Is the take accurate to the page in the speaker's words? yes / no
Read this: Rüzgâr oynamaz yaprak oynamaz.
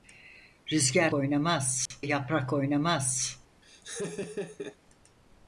yes